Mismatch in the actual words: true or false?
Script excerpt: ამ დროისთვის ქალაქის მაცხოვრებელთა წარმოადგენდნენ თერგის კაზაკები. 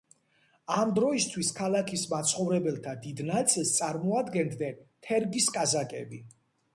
true